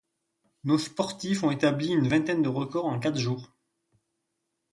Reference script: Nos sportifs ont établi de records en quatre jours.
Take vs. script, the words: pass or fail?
fail